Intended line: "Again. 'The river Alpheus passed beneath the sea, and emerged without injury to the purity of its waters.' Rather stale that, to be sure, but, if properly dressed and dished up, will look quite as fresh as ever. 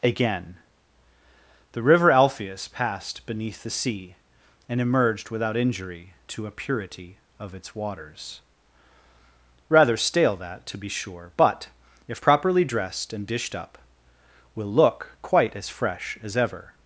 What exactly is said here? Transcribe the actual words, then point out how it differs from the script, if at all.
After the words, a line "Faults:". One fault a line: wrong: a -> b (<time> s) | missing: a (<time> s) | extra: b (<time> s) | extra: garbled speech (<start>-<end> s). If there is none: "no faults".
"Again. 'The river Alpheus passed beneath the sea, and emerged without injury to a purity of its waters.' Rather stale that, to be sure, but, if properly dressed and dished up, will look quite as fresh as ever.
Faults:
wrong: the -> a (6.5 s)